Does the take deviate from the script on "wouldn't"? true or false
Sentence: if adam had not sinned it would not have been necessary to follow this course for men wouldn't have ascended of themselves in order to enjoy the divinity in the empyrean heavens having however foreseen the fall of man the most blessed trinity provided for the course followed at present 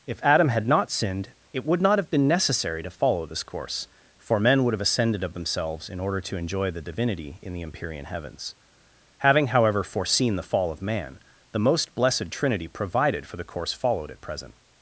true